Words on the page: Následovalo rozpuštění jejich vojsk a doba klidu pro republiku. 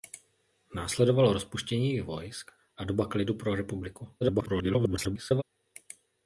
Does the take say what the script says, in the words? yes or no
no